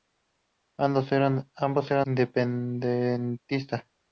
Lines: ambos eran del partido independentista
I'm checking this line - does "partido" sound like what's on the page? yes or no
no